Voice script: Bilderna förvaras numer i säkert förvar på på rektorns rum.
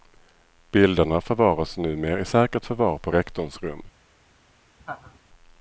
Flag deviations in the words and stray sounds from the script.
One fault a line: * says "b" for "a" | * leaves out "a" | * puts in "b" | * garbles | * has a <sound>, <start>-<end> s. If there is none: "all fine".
* leaves out "på"
* has a laugh, 4.8-5.2 s